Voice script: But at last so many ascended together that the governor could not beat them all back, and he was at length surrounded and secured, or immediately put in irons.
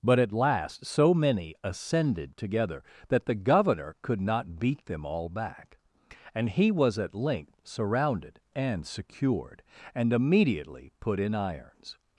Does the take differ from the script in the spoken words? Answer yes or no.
yes